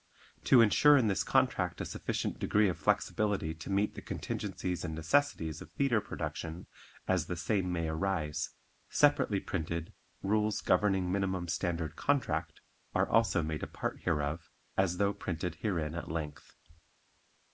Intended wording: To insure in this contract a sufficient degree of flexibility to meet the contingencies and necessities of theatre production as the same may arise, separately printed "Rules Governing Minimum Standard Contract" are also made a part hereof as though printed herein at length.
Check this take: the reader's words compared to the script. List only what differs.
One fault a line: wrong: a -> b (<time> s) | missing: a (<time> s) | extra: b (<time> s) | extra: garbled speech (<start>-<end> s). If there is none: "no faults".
no faults